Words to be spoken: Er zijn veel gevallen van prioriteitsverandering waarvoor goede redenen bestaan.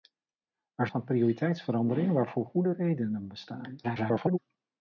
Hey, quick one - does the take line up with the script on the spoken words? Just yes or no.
no